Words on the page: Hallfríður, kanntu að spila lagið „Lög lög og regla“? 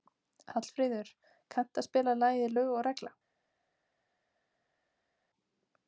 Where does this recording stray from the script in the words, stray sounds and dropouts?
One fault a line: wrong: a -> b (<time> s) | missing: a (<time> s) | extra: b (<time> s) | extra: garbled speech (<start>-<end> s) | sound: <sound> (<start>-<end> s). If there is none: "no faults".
missing: lög (2.7 s)